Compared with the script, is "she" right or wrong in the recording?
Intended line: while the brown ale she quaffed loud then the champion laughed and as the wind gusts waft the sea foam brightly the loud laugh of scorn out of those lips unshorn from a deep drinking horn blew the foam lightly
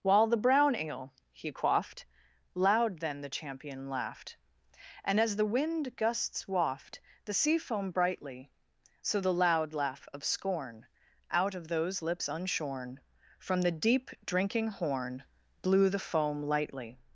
wrong